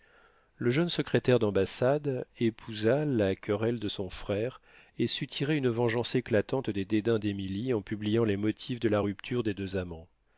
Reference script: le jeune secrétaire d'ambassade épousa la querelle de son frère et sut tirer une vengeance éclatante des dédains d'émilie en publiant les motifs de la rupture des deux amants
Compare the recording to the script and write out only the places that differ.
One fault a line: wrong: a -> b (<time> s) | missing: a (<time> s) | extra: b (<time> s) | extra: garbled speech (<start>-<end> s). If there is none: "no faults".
no faults